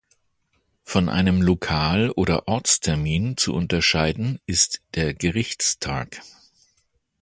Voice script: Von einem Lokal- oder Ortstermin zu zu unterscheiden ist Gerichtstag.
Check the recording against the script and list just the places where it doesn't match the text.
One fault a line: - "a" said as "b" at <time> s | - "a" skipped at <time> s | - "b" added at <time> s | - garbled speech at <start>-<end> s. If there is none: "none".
- "zu" skipped at 3.5 s
- "der" added at 4.9 s